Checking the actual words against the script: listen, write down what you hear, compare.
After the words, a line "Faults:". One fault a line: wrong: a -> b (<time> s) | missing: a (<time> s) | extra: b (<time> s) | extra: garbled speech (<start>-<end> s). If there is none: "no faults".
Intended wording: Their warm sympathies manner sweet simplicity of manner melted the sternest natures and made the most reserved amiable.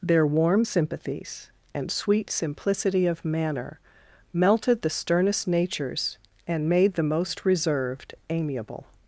Their warm sympathies and sweet simplicity of manner melted the sternest natures and made the most reserved amiable.
Faults:
wrong: manner -> and (1.7 s)